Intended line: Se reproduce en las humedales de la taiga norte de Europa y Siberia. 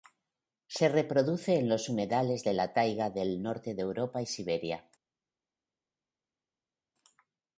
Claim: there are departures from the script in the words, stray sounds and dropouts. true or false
true